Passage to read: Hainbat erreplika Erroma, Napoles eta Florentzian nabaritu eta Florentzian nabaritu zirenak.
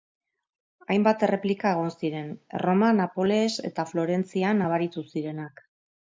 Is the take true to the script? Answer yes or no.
no